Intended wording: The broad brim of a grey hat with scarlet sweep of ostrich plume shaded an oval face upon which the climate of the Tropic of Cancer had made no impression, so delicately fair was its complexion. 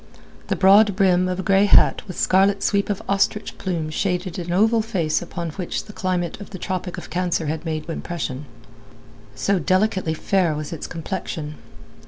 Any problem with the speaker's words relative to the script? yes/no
yes